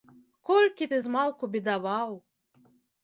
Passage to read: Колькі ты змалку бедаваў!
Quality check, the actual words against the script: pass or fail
pass